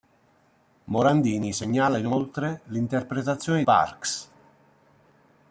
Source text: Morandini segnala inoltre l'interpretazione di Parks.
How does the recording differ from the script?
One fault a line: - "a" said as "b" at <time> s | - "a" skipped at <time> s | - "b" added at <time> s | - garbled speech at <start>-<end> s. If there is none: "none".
- "di" skipped at 3.6 s